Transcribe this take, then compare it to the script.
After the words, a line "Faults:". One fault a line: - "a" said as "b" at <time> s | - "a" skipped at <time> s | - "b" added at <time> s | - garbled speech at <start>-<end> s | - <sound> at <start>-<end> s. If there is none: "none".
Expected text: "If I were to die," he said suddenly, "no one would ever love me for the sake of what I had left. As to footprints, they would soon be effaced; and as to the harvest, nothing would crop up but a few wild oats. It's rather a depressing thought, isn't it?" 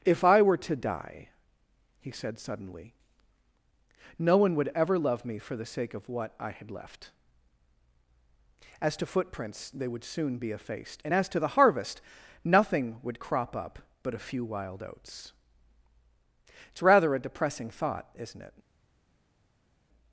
"If I were to die," he said suddenly, "no one would ever love me for the sake of what I had left. As to footprints, they would soon be effaced; and as to the harvest, nothing would crop up but a few wild oats. It's rather a depressing thought, isn't it?"
Faults:
none